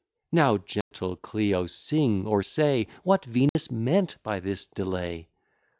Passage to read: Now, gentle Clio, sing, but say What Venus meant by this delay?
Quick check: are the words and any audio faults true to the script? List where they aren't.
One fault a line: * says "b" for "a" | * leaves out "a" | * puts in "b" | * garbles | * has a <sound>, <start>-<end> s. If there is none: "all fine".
* has a dropout, 0.8-0.9 s
* says "or" for "but"
* has a dropout, 3.5-3.6 s